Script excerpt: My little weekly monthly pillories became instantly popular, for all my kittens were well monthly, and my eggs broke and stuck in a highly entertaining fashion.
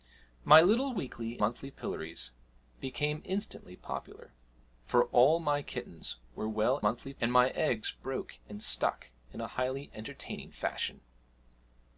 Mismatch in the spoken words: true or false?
false